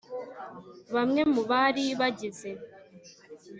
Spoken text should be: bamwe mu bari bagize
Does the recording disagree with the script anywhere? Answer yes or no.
no